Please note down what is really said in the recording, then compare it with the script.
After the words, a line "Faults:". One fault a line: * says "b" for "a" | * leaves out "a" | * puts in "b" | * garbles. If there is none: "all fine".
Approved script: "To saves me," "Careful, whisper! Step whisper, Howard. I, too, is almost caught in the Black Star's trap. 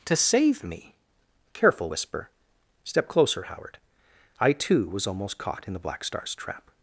"To save me," "Careful, whisper! Step closer, Howard. I, too, was almost caught in the Black Star's trap.
Faults:
* says "save" for "saves"
* says "closer" for "whisper"
* says "was" for "is"